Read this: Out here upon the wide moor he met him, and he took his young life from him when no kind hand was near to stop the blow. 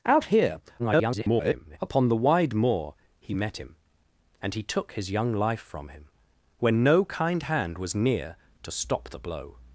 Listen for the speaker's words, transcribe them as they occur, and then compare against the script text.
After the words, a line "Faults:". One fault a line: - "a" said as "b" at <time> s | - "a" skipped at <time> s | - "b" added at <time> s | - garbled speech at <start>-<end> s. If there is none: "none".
Out here [garbled] upon the wide moor he met him, and he took his young life from him when no kind hand was near to stop the blow.
Faults:
- garbled speech at 0.8-1.8 s